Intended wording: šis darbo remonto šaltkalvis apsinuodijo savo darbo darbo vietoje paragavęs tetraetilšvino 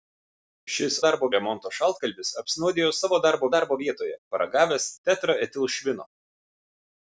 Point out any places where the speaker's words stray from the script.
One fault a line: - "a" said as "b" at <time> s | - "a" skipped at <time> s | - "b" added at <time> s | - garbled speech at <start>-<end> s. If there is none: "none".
none